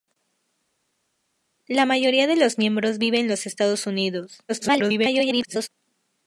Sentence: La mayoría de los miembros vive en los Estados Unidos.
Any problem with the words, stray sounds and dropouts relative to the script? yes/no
yes